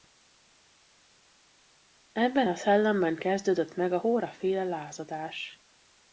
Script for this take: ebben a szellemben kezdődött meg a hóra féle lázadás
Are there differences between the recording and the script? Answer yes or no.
no